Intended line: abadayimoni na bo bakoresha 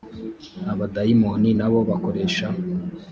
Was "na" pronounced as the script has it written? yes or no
yes